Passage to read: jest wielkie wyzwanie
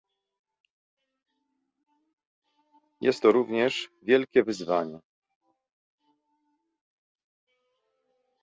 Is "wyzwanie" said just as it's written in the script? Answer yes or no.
yes